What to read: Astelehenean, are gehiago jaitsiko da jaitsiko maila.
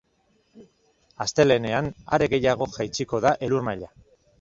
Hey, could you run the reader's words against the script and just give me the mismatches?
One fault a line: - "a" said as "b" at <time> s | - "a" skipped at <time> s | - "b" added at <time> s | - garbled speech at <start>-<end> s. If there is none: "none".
- "jaitsiko" said as "elur" at 3.5 s